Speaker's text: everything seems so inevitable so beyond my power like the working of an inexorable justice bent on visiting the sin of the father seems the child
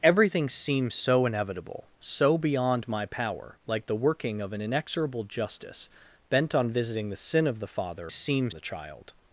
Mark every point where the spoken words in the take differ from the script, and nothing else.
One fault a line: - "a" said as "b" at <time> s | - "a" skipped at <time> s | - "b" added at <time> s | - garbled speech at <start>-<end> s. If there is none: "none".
none